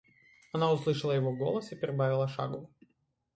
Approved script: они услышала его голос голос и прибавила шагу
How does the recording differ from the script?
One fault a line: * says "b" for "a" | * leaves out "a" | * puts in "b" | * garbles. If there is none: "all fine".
* says "она" for "они"
* leaves out "голос"